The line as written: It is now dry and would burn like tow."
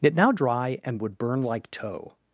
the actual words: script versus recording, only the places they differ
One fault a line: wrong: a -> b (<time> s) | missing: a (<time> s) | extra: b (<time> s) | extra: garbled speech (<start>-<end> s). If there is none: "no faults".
missing: is (0.1 s)